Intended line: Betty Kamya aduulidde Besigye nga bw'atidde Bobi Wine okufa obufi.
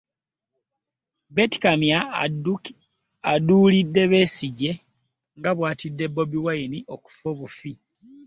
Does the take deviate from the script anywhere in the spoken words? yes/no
no